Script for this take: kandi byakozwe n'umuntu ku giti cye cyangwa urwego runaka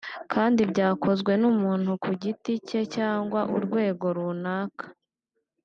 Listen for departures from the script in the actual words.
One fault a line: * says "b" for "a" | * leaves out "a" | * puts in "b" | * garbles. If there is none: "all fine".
all fine